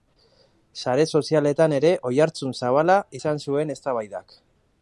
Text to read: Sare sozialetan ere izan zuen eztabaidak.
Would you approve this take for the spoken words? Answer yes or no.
no